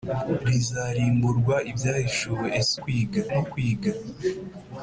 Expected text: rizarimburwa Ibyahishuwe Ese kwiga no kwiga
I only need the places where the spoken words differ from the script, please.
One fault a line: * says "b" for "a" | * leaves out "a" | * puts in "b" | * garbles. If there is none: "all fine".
all fine